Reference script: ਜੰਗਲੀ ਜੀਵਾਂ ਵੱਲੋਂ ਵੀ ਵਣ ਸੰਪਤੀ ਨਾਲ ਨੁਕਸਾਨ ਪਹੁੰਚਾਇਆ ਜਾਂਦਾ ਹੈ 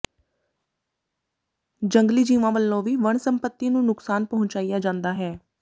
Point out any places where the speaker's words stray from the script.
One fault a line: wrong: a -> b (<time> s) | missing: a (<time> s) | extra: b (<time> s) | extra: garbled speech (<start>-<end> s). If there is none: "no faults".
wrong: ਨਾਲ -> ਨੂੰ (3.7 s)